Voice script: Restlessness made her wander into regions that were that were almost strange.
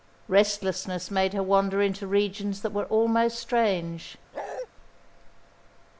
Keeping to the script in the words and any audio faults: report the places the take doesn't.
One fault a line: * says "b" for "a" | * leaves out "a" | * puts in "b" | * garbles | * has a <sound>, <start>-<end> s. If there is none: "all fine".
* leaves out "that were"
* has a bark, 4.3-4.7 s